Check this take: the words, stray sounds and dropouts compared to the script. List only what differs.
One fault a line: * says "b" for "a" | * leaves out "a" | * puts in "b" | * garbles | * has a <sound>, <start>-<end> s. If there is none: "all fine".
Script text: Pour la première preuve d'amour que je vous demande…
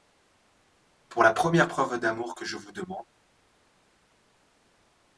all fine